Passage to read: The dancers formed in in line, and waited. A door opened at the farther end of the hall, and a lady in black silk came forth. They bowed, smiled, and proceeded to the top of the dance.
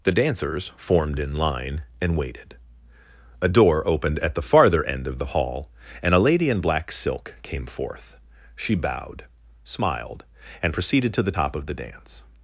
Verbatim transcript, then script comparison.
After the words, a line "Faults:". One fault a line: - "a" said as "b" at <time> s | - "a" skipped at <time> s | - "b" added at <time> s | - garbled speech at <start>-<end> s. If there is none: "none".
The dancers formed in line, and waited. A door opened at the farther end of the hall, and a lady in black silk came forth. She bowed, smiled, and proceeded to the top of the dance.
Faults:
- "in" skipped at 1.3 s
- "They" said as "She" at 8.6 s